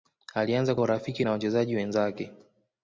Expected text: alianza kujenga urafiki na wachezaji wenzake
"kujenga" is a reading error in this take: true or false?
true